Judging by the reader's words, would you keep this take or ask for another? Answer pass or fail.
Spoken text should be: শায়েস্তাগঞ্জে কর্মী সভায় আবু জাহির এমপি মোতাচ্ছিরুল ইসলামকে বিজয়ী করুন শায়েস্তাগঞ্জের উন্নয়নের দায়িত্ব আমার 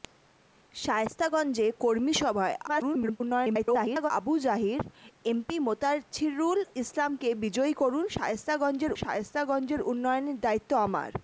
fail